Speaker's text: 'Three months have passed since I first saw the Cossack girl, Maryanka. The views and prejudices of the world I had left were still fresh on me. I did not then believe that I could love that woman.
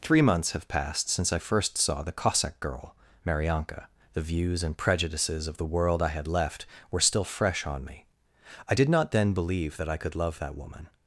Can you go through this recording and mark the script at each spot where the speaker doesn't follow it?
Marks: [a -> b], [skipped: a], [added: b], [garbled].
'Three months have passed since I first saw the Cossack girl, Maryanka. The views and prejudices of the world I had left were still fresh on me. I did not then believe that I could love that woman.